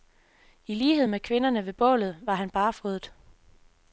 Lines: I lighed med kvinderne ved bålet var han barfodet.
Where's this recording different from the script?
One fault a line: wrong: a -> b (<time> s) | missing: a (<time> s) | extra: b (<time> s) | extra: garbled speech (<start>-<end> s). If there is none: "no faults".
no faults